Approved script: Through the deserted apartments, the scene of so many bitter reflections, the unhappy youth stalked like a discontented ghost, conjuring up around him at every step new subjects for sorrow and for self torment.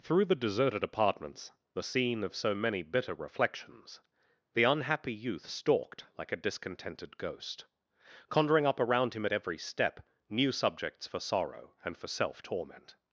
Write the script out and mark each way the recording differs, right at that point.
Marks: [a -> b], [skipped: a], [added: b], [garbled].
Through the deserted apartments, the scene of so many bitter reflections, the unhappy youth stalked like a discontented ghost, conjuring up around him at every step new subjects for sorrow and for self torment.